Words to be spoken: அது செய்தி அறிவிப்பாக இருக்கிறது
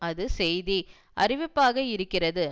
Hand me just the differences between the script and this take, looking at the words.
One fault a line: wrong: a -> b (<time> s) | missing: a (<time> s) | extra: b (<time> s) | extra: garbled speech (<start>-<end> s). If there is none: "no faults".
no faults